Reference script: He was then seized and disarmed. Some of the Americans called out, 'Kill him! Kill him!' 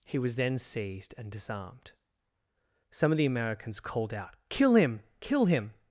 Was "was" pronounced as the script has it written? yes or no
yes